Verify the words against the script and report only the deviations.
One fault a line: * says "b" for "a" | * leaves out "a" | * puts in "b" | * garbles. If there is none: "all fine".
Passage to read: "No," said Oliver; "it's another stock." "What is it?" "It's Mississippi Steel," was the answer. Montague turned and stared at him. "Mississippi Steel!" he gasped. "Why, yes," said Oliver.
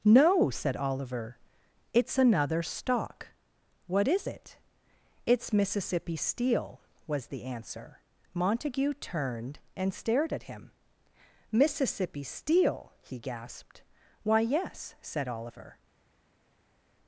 all fine